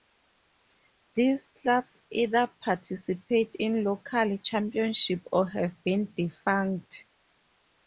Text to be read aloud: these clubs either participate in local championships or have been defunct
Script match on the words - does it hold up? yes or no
yes